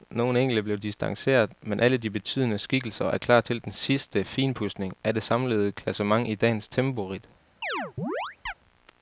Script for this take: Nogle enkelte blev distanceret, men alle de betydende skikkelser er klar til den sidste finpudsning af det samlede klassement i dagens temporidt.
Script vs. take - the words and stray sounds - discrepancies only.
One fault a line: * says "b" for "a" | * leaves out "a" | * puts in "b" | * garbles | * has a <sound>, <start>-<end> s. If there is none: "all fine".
* has a chirp, 7.6-8.5 s